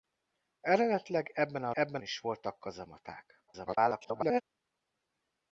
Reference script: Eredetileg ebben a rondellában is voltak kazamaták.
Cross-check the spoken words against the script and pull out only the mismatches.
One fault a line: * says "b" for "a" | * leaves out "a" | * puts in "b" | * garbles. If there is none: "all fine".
* says "ebben" for "rondellában"
* garbles